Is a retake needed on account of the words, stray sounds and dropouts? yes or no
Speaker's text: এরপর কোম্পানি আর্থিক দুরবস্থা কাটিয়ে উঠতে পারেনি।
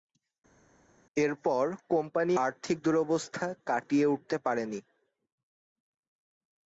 no